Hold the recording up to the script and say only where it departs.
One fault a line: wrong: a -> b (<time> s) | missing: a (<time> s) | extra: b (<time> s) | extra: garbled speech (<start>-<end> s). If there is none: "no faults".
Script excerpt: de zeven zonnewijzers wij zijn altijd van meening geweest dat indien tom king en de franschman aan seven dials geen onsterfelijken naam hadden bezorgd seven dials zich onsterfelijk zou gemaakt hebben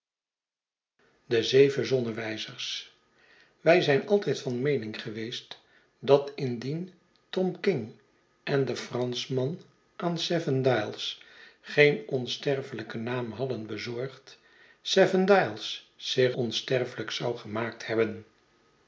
no faults